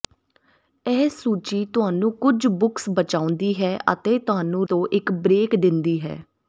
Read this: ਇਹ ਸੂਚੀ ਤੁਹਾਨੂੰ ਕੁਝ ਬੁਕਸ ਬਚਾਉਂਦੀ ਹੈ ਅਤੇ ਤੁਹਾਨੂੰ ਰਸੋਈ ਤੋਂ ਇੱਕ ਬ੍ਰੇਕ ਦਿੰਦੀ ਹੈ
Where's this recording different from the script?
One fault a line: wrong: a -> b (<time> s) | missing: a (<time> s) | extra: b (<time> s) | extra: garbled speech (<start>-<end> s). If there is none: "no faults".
missing: ਰਸੋਈ (4.7 s)